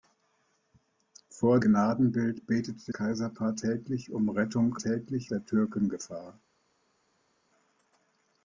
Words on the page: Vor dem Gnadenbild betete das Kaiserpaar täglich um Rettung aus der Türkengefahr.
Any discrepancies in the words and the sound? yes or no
yes